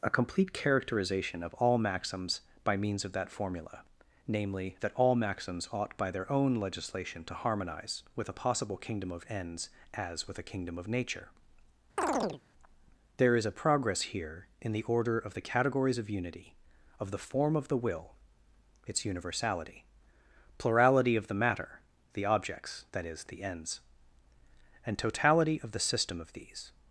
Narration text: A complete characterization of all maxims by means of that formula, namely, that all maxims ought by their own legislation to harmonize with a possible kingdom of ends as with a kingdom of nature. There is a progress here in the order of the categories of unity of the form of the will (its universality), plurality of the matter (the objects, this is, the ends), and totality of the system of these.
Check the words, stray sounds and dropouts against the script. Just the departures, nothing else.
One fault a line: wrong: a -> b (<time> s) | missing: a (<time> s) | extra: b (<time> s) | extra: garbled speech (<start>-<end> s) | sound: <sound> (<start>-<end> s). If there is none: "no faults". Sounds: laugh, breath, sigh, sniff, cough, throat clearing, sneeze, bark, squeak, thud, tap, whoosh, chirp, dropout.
sound: chirp (12.0-12.4 s)
wrong: this -> that (22.9 s)